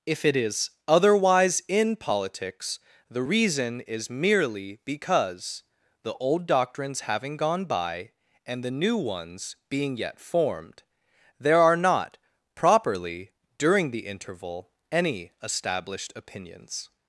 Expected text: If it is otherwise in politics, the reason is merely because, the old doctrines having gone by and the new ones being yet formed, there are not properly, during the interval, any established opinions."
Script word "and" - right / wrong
right